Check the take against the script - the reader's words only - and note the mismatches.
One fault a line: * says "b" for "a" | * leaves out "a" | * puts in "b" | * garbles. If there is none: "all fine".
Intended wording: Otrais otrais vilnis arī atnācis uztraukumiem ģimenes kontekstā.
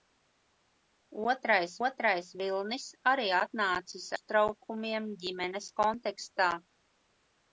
all fine